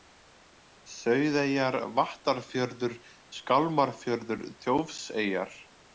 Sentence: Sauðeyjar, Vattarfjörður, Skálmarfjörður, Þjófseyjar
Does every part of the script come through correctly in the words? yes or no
yes